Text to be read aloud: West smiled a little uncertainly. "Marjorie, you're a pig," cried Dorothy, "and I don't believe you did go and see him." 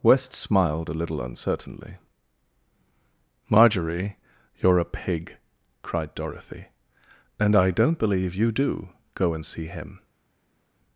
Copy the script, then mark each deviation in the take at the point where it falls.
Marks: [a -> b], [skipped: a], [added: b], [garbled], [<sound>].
West smiled a little uncertainly. "Marjorie, you're a pig," cried Dorothy, "and I don't believe you [did -> do] go and see him."